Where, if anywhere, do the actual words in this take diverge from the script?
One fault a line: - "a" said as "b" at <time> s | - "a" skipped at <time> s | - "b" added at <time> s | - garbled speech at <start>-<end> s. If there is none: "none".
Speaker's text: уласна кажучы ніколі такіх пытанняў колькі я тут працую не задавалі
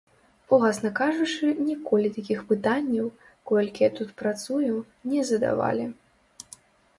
none